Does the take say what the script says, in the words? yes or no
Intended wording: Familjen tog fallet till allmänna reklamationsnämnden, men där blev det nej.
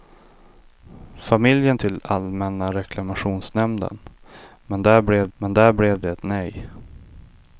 no